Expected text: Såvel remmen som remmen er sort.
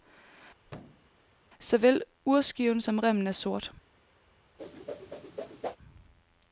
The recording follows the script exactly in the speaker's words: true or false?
false